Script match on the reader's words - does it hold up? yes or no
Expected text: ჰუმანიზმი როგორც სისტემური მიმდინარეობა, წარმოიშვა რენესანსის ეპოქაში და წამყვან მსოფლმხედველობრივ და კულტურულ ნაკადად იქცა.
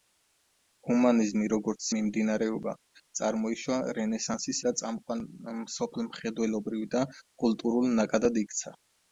no